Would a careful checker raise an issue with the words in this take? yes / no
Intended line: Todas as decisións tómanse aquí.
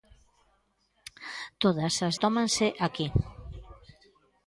yes